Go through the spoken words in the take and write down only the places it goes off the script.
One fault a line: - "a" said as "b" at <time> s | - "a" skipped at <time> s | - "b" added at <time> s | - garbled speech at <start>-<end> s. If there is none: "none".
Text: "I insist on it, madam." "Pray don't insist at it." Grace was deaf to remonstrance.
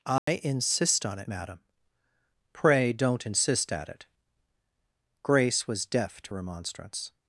none